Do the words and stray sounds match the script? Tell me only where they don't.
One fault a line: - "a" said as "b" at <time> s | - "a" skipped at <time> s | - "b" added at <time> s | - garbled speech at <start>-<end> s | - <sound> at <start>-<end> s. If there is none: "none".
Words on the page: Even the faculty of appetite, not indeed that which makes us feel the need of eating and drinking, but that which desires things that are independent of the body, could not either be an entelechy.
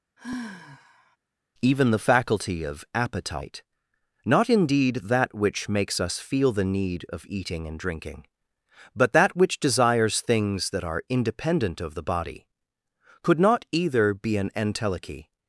- sigh at 0.2-1.2 s